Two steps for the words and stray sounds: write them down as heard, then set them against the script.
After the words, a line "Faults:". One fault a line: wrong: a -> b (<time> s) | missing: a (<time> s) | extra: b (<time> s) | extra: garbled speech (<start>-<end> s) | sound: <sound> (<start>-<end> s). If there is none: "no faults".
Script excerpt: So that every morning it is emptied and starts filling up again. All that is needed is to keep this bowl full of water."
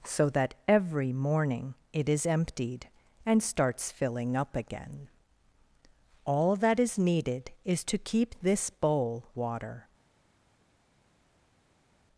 So that every morning it is emptied and starts filling up again. All that is needed is to keep this bowl water."
Faults:
missing: full of (9.3 s)